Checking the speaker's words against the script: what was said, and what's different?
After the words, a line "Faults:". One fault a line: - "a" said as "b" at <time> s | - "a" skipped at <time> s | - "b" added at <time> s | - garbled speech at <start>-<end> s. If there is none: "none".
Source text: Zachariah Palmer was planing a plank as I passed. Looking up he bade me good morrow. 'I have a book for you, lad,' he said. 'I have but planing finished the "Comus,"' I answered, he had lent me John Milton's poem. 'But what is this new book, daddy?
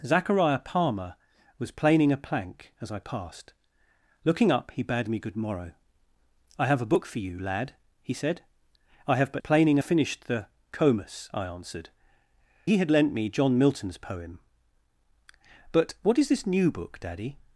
Zachariah Palmer was planing a plank as I passed. Looking up he bade me good morrow. 'I have a book for you, lad,' he said. 'I have but planing finished the "Comus,"' I answered, he had lent me John Milton's poem. 'But what is this new book, daddy?
Faults:
none